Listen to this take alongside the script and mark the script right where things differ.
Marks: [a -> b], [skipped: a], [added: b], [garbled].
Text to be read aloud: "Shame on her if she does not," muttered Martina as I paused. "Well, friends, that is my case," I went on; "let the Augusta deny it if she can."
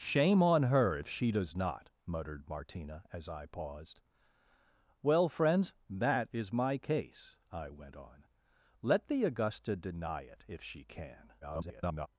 "Shame on her if she does not," muttered Martina as I paused. "Well, friends, that is my case," I went on; "let the Augusta deny it if she can." [garbled]